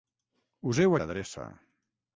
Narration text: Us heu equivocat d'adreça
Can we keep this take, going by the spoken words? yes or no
no